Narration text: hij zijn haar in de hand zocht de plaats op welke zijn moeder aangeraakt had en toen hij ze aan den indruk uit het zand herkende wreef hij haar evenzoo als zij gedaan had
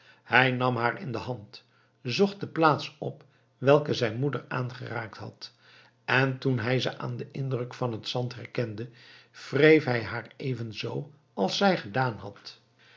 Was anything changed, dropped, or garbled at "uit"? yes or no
yes